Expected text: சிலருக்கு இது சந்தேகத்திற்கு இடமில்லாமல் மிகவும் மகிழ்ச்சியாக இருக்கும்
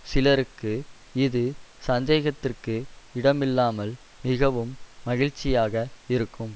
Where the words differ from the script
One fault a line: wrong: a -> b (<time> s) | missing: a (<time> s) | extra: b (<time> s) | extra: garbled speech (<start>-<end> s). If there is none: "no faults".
no faults